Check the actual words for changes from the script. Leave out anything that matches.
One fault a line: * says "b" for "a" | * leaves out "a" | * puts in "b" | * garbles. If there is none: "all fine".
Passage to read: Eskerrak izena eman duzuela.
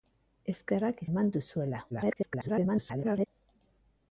* leaves out "izena"
* garbles